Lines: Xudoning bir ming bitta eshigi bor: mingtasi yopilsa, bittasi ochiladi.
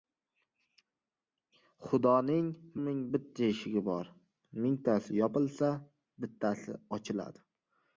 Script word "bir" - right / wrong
wrong